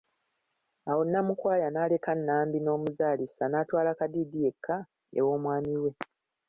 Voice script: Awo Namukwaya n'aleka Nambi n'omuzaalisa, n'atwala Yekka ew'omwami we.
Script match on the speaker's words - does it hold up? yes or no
no